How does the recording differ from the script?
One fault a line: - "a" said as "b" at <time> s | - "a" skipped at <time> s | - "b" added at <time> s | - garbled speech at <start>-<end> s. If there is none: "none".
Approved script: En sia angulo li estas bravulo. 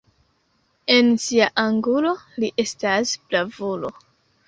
none